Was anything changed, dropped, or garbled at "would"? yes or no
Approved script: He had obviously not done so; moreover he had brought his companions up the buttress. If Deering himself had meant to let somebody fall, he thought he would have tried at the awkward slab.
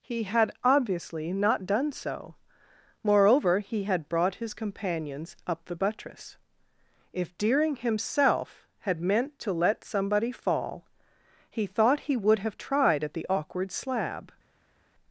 no